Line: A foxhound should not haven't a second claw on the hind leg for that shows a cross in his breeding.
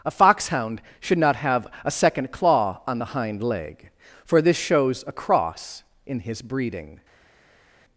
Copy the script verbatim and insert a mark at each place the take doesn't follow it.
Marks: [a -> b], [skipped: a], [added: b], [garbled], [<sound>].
A foxhound should not [haven't -> have] a second claw on the hind leg for [that -> this] shows a cross in his breeding.